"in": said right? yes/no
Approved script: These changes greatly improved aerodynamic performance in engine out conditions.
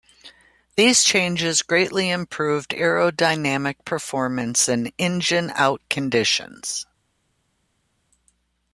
yes